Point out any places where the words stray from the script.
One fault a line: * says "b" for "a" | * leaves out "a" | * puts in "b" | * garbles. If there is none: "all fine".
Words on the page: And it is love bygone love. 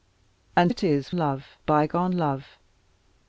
all fine